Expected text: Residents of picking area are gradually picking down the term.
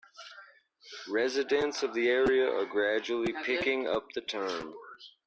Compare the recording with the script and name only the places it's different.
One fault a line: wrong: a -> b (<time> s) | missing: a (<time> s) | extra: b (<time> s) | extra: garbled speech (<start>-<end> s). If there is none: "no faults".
wrong: picking -> the (1.9 s)
wrong: down -> up (3.9 s)